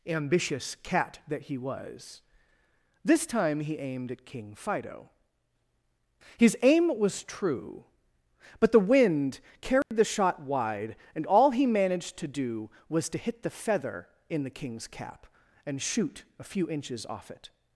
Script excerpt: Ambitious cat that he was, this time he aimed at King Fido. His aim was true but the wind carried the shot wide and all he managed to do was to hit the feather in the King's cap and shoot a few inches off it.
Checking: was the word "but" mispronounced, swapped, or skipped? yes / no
no